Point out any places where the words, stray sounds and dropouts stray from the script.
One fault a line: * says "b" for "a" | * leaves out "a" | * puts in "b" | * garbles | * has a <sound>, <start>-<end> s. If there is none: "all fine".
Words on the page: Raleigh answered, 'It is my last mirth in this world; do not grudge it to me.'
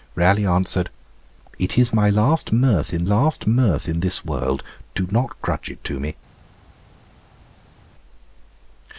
* puts in "last mirth in"